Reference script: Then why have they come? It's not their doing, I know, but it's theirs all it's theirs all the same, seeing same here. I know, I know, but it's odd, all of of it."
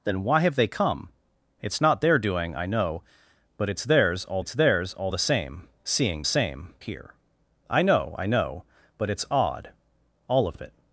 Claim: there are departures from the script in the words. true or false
false